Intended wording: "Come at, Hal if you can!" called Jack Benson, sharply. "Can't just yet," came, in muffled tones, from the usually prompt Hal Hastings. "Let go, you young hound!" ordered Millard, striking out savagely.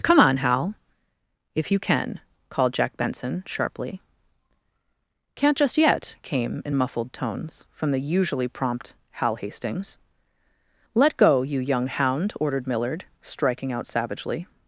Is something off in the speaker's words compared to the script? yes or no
yes